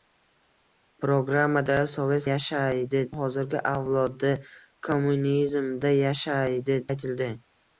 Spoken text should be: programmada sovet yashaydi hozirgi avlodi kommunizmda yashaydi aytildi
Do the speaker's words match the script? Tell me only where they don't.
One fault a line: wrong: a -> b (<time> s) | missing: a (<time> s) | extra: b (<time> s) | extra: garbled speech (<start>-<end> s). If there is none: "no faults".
no faults